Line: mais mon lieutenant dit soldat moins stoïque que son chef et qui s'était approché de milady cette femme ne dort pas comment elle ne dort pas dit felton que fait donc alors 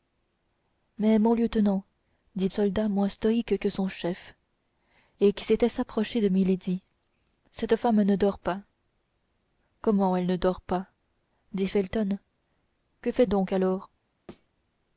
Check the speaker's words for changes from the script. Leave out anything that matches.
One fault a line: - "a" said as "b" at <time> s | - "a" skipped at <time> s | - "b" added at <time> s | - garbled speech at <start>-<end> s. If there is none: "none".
none